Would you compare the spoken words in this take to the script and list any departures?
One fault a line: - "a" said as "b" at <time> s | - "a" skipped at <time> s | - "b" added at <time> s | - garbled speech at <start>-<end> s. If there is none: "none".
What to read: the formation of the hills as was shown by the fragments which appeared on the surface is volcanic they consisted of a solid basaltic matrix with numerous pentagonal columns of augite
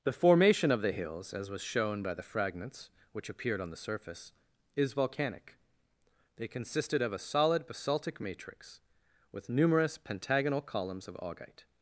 none